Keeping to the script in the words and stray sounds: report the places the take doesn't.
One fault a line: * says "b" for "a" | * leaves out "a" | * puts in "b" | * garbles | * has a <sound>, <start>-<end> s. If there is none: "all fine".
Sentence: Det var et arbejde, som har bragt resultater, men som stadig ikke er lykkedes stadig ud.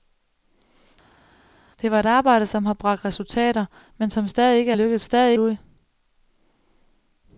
all fine